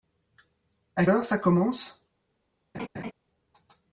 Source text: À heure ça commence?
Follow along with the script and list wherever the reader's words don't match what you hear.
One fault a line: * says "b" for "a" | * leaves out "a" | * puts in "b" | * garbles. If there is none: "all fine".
all fine